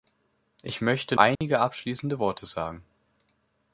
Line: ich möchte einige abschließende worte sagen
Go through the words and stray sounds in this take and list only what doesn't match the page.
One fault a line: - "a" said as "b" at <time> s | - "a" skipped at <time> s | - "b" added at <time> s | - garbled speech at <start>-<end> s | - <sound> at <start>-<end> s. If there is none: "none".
- dropout at 1.4-1.4 s